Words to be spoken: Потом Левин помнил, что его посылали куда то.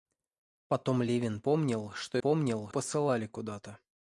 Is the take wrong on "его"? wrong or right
wrong